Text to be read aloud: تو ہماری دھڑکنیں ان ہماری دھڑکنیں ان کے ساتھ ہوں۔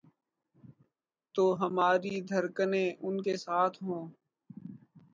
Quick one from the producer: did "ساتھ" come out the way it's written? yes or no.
yes